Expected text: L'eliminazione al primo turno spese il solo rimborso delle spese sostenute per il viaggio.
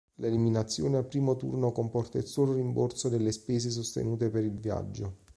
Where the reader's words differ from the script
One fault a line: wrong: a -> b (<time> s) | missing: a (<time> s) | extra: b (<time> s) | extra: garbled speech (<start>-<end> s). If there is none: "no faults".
wrong: spese -> comporta (1.7 s)